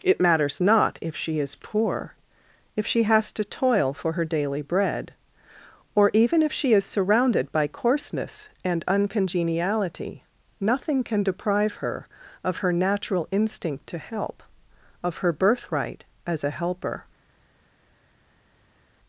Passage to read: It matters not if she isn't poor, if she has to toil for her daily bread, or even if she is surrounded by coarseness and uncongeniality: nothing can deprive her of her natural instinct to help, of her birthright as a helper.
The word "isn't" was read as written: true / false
false